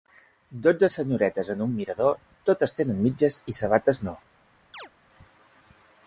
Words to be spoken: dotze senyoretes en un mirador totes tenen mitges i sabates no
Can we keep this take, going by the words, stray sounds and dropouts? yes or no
no